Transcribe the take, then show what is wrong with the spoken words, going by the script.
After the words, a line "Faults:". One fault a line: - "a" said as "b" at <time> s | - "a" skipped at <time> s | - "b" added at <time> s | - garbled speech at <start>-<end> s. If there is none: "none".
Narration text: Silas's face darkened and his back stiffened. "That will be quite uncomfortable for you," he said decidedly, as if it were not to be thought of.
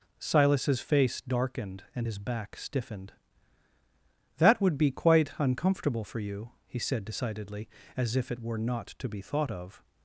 Silas's face darkened and his back stiffened. "That would be quite uncomfortable for you," he said decidedly, as if it were not to be thought of.
Faults:
- "will" said as "would" at 4.6 s